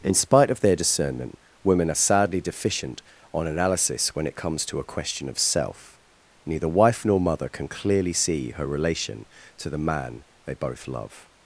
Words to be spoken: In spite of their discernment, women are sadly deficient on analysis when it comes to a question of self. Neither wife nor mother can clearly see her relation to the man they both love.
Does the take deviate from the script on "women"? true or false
false